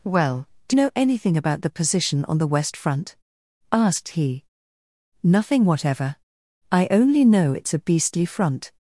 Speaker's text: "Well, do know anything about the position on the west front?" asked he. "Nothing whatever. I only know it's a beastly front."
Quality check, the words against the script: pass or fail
pass